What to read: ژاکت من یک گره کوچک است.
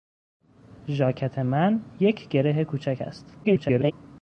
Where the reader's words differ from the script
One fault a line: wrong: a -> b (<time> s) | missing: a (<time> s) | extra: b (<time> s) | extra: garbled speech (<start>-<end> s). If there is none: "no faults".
extra: garbled speech (3.4-3.9 s)